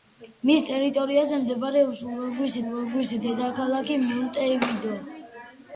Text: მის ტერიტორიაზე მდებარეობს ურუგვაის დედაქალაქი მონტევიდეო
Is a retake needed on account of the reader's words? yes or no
yes